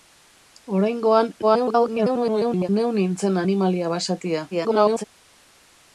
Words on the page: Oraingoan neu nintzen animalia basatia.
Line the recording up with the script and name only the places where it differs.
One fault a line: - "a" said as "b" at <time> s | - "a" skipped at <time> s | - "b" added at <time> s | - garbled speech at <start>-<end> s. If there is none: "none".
- garbled speech at 1.4-2.7 s
- garbled speech at 4.5-5.0 s